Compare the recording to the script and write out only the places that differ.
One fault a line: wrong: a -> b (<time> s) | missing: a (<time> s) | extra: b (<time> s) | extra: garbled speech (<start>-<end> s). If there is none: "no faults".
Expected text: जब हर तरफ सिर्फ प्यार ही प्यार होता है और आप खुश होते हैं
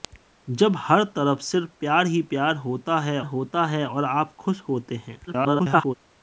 extra: होता है (3.2 s)
extra: garbled speech (5.3-5.9 s)